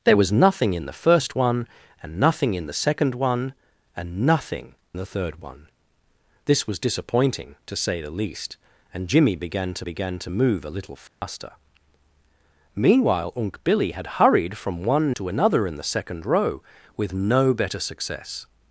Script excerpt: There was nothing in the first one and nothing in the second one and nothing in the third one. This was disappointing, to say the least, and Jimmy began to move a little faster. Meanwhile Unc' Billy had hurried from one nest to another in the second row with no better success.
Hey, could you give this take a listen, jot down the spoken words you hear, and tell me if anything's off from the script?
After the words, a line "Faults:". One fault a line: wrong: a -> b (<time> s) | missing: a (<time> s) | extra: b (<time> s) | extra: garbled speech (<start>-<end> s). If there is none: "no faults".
There was nothing in the first one and nothing in the second one and nothing the third one. This was disappointing, to say the least, and Jimmy began to began to move a little faster. Meanwhile Unc' Billy had hurried from one to another in the second row with no better success.
Faults:
missing: in (4.7 s)
extra: began to (9.8 s)
missing: nest (15.1 s)